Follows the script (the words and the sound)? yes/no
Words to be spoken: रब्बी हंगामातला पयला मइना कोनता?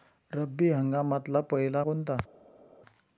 no